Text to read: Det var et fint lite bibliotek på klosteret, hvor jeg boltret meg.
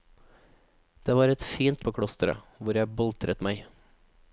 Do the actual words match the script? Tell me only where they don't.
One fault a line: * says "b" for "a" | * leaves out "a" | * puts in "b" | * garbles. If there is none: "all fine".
* leaves out "lite bibliotek"